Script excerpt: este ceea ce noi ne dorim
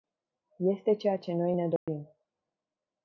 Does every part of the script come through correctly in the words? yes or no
yes